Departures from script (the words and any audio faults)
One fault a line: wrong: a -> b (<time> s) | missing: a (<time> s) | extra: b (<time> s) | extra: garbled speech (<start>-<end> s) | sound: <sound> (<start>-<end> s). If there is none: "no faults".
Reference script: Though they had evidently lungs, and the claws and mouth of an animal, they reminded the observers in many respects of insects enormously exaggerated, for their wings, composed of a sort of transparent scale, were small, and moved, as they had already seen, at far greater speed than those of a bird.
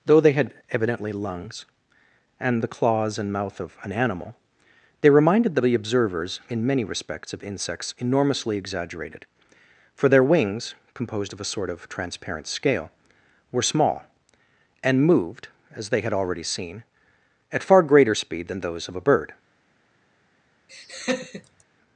sound: laugh (20.7-21.6 s)